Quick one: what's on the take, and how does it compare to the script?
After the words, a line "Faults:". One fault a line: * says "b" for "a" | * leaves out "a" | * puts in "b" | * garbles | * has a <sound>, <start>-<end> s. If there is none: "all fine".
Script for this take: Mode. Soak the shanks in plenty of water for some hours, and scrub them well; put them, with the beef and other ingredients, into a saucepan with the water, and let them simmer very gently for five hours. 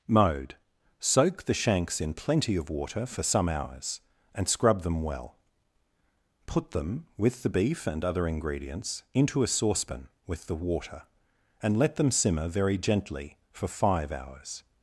Mode. Soak the shanks in plenty of water for some hours, and scrub them well; put them, with the beef and other ingredients, into a saucepan with the water, and let them simmer very gently for five hours.
Faults:
all fine